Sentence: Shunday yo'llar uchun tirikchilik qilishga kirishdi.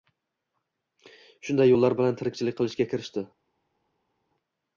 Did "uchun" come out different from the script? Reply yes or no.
yes